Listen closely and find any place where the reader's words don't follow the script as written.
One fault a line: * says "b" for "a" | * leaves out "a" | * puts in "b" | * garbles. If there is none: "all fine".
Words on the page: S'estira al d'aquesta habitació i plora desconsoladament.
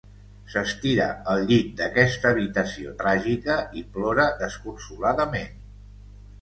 * puts in "llit"
* puts in "tràgica"